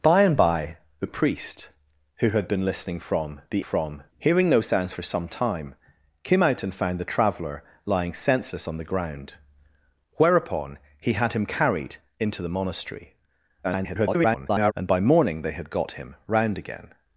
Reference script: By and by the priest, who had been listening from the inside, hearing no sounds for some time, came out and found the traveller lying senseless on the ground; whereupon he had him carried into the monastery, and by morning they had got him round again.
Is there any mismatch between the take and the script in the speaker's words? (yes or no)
yes